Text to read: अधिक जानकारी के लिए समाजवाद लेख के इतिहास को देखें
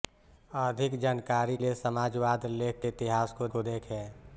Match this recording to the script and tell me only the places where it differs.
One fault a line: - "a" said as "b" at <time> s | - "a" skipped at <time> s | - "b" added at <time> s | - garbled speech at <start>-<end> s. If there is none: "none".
- "के" skipped at 1.6 s
- "को" added at 3.5 s